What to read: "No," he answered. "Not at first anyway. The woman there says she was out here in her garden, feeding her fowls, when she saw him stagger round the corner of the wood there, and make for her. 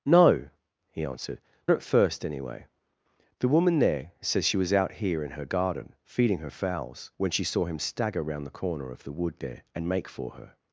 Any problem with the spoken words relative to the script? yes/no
yes